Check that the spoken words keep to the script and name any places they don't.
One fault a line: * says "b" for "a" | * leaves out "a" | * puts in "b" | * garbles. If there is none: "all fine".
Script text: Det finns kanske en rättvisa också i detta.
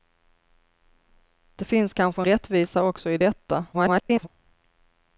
* leaves out "en"
* garbles